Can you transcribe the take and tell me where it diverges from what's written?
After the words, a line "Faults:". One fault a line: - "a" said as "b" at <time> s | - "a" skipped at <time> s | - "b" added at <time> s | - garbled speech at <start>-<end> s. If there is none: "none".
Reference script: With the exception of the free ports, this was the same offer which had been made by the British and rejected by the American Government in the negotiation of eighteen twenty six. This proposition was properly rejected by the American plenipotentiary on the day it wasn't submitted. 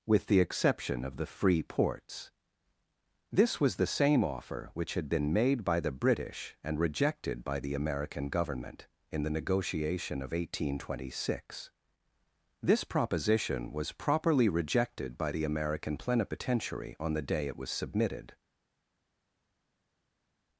With the exception of the free ports, this was the same offer which had been made by the British and rejected by the American Government in the negotiation of eighteen twenty six. This proposition was properly rejected by the American plenipotentiary on the day it was submitted.
Faults:
- "wasn't" said as "was" at 17.6 s